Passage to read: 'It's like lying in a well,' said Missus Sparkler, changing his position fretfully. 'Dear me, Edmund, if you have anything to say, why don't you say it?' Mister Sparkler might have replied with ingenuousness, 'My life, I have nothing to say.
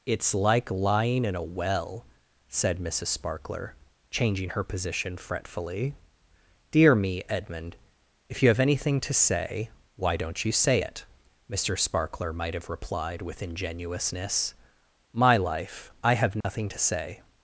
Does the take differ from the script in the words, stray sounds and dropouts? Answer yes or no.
yes